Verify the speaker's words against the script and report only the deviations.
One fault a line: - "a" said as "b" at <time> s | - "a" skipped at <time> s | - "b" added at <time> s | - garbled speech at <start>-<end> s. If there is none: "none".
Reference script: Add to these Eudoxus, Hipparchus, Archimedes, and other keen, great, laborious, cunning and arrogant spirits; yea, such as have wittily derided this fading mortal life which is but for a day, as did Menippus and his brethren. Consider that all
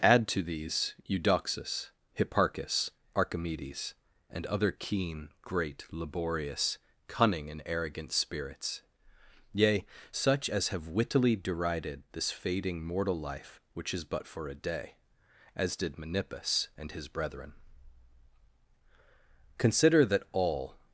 none